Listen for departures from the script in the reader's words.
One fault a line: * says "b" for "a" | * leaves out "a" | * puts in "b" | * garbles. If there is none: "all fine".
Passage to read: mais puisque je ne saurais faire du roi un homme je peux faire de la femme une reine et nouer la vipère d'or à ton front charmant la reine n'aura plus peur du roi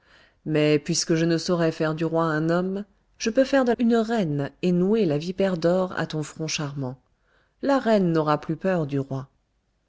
* leaves out "la femme"